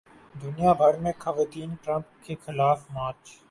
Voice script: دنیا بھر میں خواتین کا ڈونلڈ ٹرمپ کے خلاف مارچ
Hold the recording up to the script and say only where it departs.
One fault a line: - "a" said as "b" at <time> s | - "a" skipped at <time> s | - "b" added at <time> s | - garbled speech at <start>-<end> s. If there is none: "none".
- "کا ڈونلڈ" skipped at 1.7 s